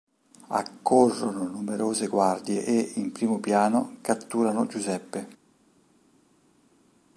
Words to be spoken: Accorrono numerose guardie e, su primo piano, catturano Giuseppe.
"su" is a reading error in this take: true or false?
true